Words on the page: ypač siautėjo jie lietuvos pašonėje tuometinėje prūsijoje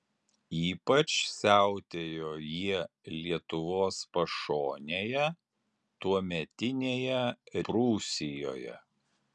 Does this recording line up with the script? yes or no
yes